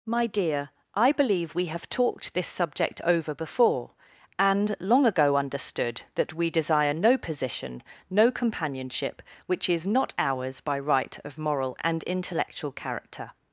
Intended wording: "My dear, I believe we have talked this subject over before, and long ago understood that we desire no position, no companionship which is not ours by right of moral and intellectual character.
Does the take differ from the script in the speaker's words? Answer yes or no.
no